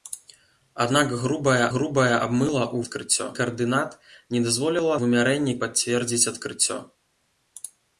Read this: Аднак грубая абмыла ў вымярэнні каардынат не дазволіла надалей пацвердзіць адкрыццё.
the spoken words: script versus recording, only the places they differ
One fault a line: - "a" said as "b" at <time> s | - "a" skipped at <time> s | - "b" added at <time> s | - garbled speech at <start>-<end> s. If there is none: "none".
- "грубая" added at 1.7 s
- "вымярэнні" said as "адкрыццё" at 2.8 s
- "надалей" said as "вымярэнні" at 5.0 s